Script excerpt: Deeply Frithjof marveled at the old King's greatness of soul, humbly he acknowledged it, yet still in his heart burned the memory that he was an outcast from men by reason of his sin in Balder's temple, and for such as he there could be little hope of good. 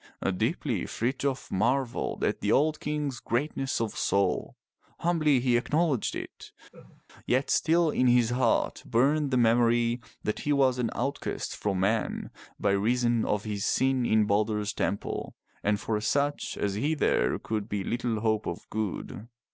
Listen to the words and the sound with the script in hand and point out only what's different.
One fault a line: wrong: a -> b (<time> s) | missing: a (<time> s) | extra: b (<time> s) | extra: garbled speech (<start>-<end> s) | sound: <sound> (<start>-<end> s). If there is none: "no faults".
sound: laugh (6.7-7.0 s)